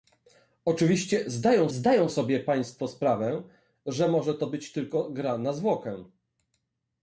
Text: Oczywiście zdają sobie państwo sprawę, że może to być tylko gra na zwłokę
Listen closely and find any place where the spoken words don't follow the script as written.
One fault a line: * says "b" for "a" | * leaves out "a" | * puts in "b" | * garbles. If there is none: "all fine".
* puts in "zdają"